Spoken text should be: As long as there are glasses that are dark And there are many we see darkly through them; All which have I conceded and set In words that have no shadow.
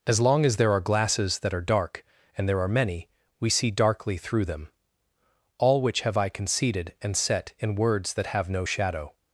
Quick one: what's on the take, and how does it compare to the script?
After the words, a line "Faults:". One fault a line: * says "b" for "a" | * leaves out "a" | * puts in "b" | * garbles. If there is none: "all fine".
As long as there are glasses that are dark And there are many we see darkly through them; All which have I conceded and set In words that have no shadow.
Faults:
all fine